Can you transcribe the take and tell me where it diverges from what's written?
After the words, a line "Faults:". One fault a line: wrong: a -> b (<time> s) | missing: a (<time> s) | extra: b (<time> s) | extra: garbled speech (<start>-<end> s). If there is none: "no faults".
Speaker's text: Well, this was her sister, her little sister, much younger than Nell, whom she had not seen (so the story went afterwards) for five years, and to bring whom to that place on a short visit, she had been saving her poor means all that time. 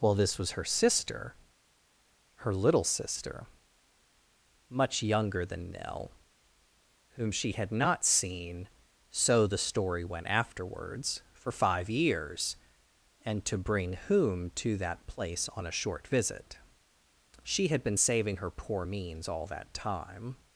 Well, this was her sister, her little sister, much younger than Nell, whom she had not seen (so the story went afterwards) for five years, and to bring whom to that place on a short visit, she had been saving her poor means all that time.
Faults:
no faults